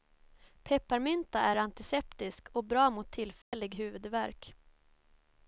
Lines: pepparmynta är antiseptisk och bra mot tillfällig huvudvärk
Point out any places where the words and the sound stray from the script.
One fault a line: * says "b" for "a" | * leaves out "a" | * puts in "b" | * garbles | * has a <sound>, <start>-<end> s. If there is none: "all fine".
* has a dropout, 3.4-3.5 s